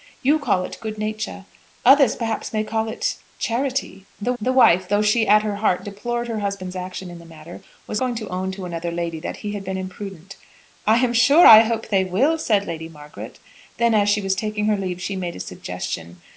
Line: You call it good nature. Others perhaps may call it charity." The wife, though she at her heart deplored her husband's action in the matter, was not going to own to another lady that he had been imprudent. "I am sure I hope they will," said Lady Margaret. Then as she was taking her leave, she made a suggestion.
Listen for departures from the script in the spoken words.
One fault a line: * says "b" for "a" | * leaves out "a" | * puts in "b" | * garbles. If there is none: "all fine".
* puts in "the"
* leaves out "not"